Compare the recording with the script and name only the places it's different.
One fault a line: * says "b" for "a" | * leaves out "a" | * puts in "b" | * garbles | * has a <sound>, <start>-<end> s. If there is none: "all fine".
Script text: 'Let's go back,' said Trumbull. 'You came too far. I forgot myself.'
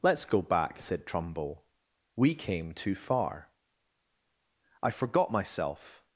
* says "We" for "You"